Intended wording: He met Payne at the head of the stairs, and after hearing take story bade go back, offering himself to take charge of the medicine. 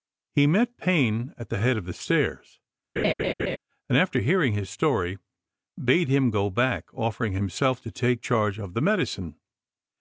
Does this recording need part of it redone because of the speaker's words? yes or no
yes